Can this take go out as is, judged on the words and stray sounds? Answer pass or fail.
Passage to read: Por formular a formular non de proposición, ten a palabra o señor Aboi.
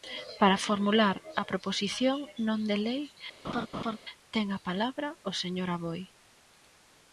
fail